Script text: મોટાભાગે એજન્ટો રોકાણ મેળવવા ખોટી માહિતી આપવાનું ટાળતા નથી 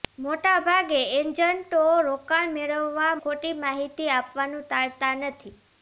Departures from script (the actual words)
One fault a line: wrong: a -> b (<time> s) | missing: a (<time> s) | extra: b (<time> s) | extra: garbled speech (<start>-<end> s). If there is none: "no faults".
no faults